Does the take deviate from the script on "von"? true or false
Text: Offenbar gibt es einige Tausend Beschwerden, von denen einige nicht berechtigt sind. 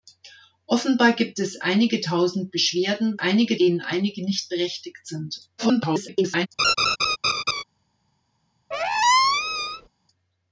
true